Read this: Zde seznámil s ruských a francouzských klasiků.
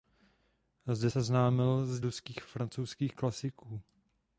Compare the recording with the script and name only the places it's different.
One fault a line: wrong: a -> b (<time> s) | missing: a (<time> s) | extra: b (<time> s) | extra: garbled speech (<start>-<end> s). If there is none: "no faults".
no faults